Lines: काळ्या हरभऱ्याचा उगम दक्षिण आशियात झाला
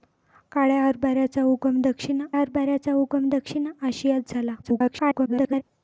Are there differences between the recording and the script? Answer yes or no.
yes